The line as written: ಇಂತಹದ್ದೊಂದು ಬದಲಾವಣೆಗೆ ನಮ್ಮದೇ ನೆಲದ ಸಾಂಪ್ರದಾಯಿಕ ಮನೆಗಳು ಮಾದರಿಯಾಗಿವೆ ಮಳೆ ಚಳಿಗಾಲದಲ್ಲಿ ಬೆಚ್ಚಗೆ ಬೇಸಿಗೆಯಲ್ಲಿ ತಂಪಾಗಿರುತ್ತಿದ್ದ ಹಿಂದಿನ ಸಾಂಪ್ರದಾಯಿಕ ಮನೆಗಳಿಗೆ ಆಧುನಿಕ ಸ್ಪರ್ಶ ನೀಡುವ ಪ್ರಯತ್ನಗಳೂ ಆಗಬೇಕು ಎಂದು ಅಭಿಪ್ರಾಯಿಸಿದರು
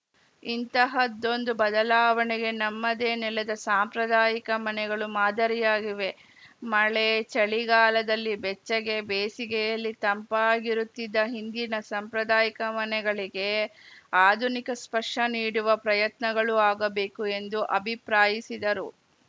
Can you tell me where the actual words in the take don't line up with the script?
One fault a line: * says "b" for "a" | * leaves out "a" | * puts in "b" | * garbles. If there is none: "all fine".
all fine